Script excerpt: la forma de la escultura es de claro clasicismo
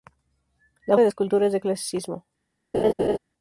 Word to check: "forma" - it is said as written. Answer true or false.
false